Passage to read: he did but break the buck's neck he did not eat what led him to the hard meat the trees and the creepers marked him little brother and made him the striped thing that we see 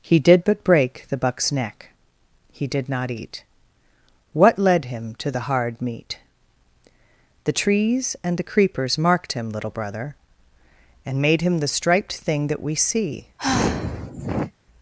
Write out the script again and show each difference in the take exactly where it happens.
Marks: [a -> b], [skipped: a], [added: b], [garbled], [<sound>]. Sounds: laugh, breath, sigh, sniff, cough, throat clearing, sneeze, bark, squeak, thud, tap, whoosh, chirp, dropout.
he did but break the buck's neck he did not eat what led him to the hard meat the trees and the creepers marked him little brother and made him the striped thing that we see [sigh]